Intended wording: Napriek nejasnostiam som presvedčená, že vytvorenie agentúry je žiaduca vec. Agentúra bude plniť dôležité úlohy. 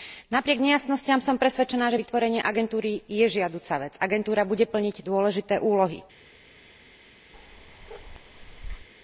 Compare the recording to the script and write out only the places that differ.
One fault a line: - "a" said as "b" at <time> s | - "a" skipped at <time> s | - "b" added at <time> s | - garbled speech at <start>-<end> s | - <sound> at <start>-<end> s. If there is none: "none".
- bark at 7.3-8.9 s